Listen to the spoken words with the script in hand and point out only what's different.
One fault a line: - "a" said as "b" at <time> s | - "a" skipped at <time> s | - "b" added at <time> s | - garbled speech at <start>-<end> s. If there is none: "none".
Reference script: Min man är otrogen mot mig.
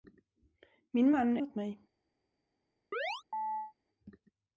- "är otrogen" skipped at 1.4 s